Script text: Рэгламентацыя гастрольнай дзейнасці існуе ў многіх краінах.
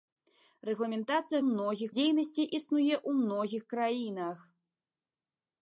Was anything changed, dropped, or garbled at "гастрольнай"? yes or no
yes